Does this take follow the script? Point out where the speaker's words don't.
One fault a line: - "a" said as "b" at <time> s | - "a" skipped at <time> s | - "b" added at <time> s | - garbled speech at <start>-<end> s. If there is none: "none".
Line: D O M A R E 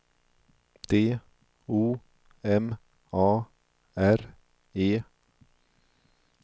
none